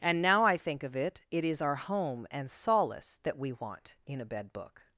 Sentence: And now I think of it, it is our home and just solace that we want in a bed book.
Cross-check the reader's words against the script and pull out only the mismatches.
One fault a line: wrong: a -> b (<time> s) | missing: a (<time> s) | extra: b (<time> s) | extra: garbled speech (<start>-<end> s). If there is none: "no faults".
missing: just (2.5 s)